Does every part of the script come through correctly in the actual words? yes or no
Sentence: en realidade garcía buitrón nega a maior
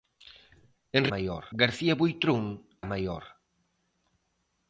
no